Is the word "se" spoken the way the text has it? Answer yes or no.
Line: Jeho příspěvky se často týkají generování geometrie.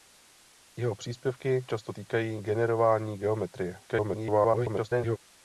no